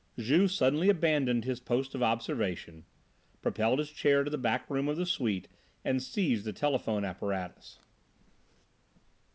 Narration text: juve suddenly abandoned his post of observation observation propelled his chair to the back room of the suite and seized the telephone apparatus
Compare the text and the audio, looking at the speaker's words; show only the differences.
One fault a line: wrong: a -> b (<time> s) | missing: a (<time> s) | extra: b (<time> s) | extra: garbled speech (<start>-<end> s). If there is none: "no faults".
missing: observation (2.9 s)